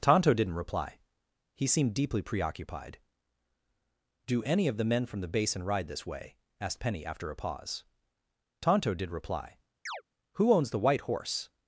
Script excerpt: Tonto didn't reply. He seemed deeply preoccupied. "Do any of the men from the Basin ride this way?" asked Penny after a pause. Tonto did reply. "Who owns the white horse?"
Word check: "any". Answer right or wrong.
right